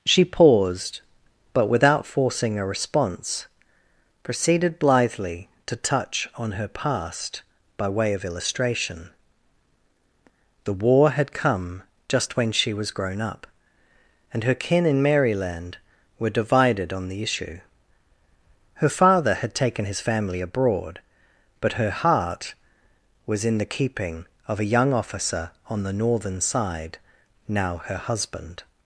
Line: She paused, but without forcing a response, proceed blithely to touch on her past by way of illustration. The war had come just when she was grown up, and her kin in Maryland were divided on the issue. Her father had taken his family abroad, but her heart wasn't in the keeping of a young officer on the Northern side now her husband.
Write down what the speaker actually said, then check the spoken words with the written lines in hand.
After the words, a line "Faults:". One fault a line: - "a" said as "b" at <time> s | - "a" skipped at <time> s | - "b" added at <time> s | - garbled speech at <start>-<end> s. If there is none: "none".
She paused, but without forcing a response, proceeded blithely to touch on her past by way of illustration. The war had come just when she was grown up, and her kin in Maryland were divided on the issue. Her father had taken his family abroad, but her heart was in the keeping of a young officer on the Northern side now her husband.
Faults:
- "proceed" said as "proceeded" at 4.2 s
- "wasn't" said as "was" at 23.3 s